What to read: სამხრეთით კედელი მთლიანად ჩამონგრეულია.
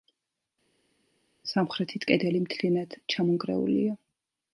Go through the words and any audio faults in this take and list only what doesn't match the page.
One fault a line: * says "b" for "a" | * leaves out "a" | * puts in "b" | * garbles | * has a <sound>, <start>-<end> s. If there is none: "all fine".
all fine